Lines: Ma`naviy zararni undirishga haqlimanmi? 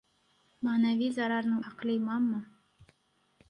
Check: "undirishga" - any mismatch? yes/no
yes